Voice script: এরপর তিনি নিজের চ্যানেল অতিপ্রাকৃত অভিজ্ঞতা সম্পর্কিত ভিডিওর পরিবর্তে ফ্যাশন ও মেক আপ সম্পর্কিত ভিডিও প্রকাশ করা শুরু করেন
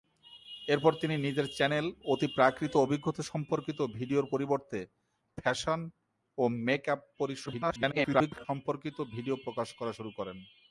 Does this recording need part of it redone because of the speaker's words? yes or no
yes